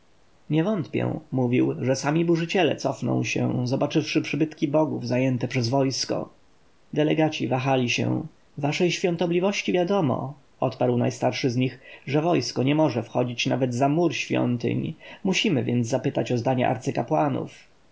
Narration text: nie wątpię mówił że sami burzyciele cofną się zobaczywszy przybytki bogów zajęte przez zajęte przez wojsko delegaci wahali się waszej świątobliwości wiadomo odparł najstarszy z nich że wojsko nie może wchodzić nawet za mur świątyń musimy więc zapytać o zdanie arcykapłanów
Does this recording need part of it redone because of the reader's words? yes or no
yes